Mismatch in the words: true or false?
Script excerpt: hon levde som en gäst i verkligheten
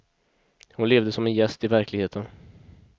false